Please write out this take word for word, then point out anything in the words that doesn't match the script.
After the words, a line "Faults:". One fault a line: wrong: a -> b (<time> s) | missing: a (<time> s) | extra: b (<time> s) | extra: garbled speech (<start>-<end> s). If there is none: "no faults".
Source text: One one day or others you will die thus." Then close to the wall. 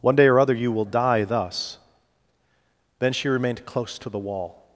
One day or other you will die thus." Then she remained close to the wall.
Faults:
missing: one (0.1 s)
wrong: others -> other (0.4 s)
extra: she remained (3.1 s)